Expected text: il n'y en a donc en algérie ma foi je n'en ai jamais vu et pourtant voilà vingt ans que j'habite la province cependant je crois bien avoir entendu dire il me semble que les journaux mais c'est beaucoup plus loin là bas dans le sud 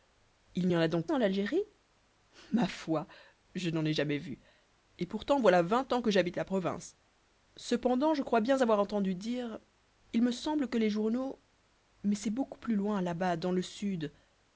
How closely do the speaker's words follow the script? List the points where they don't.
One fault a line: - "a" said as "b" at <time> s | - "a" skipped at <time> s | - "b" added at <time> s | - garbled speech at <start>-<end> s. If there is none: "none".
none